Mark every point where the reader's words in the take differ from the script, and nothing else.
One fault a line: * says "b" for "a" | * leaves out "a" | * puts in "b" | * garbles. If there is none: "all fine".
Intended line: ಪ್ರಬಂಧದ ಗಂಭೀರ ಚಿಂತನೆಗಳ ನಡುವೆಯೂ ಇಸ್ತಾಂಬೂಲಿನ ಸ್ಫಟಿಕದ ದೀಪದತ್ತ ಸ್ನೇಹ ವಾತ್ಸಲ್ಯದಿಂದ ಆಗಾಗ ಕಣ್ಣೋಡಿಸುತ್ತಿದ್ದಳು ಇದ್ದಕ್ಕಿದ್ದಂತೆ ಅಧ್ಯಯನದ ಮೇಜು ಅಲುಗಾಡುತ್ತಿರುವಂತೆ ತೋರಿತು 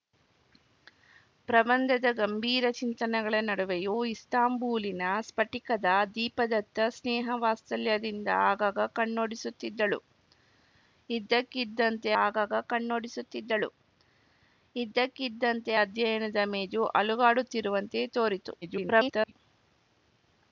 * puts in "ಆಗಾಗ ಕಣ್ಣೋಡಿಸುತ್ತಿದ್ದಳು ಇದ್ದಕ್ಕಿದ್ದಂತೆ"
* garbles